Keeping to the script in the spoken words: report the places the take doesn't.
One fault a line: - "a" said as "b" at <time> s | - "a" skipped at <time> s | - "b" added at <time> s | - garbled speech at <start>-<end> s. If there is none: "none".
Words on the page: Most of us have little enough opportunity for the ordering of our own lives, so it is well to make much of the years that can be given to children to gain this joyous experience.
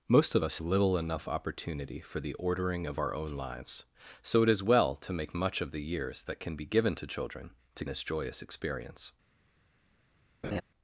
- "have" skipped at 0.6 s
- "gain" skipped at 7.8 s